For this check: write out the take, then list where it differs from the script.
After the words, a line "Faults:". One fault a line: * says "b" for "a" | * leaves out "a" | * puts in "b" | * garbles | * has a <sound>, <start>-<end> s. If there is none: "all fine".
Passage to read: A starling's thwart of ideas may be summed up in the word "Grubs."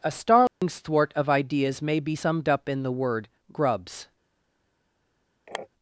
A starling's thwart of ideas may be summed up in the word "Grubs."
Faults:
* has a dropout, 0.5-0.6 s
* has a sniff, 5.5-5.7 s